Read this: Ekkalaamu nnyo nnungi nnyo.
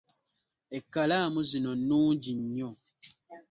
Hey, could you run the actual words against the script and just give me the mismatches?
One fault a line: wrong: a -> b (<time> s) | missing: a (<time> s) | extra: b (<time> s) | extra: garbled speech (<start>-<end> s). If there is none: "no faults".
wrong: nnyo -> zino (1.5 s)